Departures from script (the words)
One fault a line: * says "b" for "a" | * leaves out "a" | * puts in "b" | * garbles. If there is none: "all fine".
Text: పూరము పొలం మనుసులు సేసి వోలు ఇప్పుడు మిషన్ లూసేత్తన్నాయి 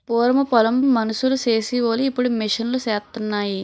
all fine